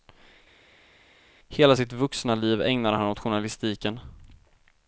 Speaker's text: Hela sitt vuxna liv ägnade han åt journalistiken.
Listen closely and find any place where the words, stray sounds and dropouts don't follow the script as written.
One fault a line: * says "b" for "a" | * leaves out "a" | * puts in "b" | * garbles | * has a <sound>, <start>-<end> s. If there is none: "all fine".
all fine